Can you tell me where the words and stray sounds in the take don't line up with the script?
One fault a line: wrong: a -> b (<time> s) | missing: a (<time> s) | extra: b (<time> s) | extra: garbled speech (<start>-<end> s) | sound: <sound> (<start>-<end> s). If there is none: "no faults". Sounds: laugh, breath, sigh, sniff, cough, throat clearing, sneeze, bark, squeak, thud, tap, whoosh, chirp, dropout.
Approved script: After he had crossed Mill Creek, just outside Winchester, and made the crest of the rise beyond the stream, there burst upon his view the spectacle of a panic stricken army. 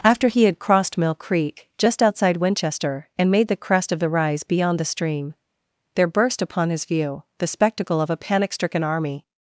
no faults